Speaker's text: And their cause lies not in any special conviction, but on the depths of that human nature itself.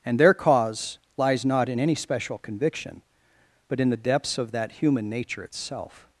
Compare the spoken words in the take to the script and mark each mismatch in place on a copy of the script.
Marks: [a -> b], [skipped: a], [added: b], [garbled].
And their cause lies not in any special conviction, but [on -> in] the depths of that human nature itself.